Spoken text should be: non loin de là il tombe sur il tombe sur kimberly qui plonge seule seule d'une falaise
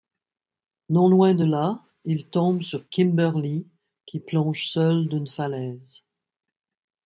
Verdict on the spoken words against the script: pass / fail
fail